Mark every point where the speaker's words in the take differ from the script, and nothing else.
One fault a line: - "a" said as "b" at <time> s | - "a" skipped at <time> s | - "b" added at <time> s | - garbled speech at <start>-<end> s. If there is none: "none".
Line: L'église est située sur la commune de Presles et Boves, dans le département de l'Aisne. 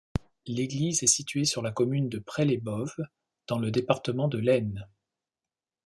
none